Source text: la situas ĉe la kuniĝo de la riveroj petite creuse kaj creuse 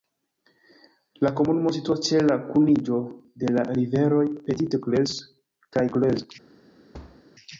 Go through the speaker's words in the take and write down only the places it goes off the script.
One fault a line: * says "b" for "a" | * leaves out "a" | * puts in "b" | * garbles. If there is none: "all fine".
* puts in "komunumo"